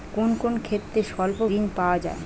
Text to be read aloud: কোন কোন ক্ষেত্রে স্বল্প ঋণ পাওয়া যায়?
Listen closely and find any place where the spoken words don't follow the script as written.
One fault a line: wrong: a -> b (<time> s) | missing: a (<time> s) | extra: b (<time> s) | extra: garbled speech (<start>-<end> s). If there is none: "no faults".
no faults